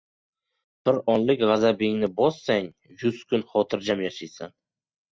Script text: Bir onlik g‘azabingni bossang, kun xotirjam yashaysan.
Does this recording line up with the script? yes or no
no